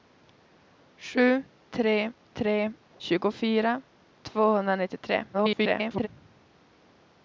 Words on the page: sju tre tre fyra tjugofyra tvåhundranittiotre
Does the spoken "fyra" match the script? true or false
false